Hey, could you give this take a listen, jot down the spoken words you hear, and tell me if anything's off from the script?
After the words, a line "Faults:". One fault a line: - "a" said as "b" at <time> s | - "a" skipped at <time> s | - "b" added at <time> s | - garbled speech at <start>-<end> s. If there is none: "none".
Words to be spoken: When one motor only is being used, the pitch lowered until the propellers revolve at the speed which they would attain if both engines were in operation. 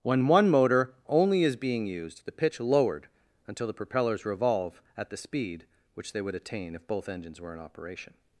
When one motor only is being used, the pitch lowered until the propellers revolve at the speed which they would attain if both engines were in operation.
Faults:
none